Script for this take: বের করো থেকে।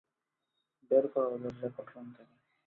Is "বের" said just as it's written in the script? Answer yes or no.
yes